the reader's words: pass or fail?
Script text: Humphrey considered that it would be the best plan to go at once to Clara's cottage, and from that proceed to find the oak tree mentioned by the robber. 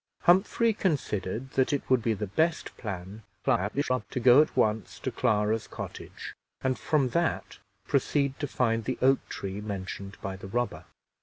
fail